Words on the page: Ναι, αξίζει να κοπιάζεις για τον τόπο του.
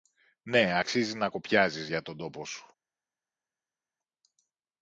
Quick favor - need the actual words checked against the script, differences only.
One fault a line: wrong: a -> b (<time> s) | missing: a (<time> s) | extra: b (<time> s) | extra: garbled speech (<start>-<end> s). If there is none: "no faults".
wrong: του -> σου (2.4 s)